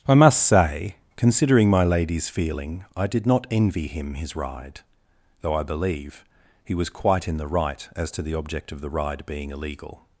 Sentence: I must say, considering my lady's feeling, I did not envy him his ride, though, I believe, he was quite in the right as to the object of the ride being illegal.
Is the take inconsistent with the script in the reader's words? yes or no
no